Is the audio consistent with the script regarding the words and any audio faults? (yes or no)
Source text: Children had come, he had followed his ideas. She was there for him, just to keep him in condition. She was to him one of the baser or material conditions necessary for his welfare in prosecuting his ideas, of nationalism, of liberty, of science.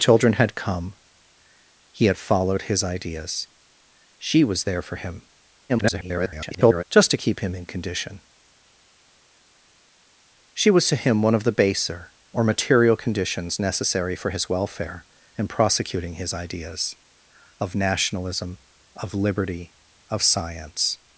no